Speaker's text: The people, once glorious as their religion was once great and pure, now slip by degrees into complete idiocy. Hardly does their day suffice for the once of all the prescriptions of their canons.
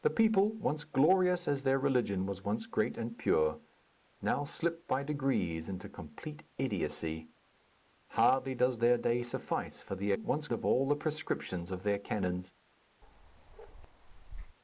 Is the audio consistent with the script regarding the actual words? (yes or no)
yes